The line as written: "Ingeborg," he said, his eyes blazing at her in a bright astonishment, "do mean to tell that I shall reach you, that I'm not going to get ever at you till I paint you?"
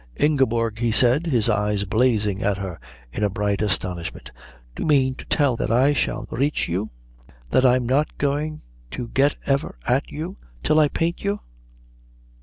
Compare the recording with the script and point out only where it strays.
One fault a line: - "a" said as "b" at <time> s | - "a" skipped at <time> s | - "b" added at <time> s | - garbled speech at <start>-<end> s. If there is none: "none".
none